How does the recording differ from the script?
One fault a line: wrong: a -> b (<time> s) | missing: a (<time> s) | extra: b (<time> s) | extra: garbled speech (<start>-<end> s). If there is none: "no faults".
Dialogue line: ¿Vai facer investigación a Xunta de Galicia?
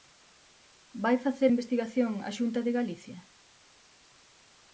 no faults